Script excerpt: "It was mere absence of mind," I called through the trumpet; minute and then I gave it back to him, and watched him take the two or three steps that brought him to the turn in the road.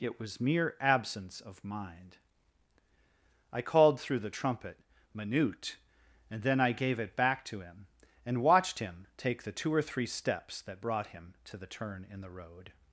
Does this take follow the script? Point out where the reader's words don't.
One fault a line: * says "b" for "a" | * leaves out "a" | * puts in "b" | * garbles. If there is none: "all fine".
all fine